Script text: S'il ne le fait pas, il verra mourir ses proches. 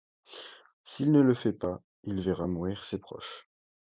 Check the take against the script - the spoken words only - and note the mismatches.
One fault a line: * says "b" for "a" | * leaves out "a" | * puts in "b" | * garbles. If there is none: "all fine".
all fine